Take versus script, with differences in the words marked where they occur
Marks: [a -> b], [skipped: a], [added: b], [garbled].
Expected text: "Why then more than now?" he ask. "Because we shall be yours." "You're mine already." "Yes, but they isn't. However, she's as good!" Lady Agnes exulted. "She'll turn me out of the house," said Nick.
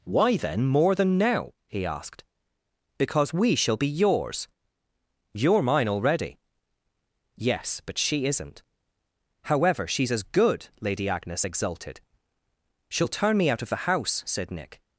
"Why then more than now?" he [ask. -> asked] "Because we shall be yours." "You're mine already." "Yes, but [they -> she] isn't. However, she's as good!" Lady Agnes exulted. "She'll turn me out of the house," said Nick.